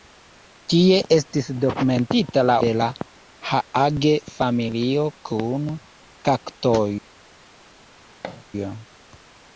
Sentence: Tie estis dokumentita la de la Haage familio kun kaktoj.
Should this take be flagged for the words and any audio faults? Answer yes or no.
yes